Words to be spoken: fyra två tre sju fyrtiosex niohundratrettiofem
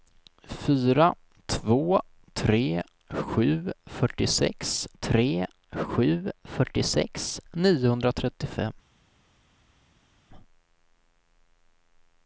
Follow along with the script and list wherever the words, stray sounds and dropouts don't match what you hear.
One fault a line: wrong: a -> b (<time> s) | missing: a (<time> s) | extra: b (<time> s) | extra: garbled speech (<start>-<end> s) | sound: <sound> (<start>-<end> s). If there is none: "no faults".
extra: tre sju fyrtiosex (5.0 s)